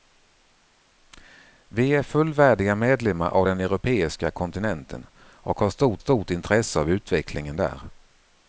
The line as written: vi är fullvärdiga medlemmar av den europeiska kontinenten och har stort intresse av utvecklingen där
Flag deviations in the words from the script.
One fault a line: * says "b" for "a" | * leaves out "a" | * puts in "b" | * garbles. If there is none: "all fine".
* puts in "stort"